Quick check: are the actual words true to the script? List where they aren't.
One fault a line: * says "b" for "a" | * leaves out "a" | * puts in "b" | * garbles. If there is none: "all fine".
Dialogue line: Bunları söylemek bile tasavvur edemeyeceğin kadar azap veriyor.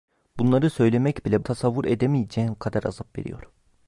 all fine